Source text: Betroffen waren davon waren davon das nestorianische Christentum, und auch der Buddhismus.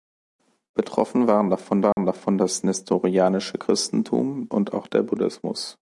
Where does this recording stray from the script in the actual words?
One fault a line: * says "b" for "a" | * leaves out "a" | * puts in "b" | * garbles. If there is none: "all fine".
all fine